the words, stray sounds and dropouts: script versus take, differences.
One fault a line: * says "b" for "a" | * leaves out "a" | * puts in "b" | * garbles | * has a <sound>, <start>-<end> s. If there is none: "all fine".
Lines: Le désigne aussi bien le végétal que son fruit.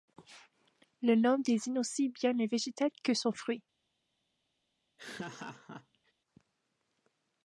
* puts in "nom"
* has a laugh, 5.0-6.1 s